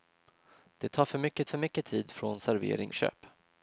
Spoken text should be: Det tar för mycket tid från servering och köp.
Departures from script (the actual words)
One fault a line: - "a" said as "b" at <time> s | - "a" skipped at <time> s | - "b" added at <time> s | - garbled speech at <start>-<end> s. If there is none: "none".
- "för mycket" added at 1.4 s
- "och" skipped at 2.9 s